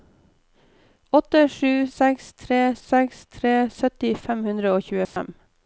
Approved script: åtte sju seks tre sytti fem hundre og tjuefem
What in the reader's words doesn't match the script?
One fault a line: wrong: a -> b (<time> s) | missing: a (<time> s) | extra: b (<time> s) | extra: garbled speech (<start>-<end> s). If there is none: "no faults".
extra: seks tre (2.9 s)